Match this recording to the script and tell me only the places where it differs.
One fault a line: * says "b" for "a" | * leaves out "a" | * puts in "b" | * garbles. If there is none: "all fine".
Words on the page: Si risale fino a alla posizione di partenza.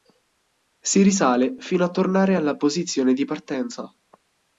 * puts in "tornare"